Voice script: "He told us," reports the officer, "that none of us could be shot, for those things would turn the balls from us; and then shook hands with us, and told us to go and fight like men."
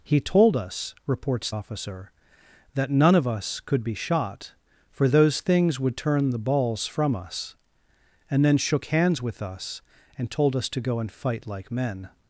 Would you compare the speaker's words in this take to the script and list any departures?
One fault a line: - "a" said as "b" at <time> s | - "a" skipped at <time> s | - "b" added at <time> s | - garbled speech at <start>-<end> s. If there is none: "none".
- "the" skipped at 1.5 s